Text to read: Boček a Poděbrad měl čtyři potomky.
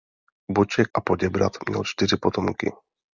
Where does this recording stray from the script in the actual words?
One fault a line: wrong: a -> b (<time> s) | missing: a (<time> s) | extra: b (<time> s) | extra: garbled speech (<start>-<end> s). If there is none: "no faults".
no faults